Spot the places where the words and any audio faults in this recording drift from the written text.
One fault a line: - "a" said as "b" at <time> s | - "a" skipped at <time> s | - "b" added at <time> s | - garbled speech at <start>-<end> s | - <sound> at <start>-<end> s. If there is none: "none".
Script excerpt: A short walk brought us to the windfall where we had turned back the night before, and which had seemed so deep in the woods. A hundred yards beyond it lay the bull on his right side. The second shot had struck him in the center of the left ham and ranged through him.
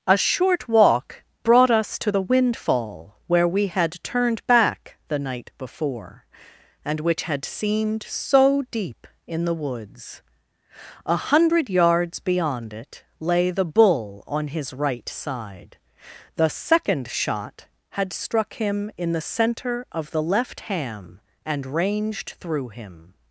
none